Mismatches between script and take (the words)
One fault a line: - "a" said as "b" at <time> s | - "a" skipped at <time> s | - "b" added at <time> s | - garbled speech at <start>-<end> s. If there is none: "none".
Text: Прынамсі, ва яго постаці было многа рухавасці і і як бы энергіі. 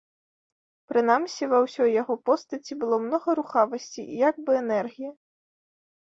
- "ўсёй" added at 1.6 s
- "і" skipped at 4.2 s